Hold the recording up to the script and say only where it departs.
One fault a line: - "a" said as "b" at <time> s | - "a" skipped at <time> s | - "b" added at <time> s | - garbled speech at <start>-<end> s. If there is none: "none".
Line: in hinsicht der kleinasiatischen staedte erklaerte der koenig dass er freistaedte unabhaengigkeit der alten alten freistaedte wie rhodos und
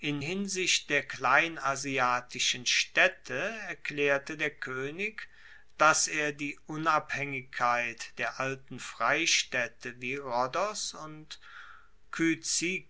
- "freistaedte" said as "die" at 6.3 s
- "alten" skipped at 8.8 s